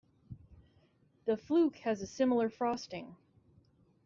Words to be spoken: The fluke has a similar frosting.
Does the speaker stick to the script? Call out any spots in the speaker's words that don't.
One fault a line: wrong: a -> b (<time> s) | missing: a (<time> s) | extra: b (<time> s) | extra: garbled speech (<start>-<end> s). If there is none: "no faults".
no faults